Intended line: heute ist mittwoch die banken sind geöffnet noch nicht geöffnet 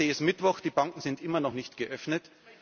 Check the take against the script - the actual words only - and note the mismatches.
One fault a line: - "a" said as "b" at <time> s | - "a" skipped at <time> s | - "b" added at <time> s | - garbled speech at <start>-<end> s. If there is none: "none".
- "geöffnet" said as "immer" at 1.2 s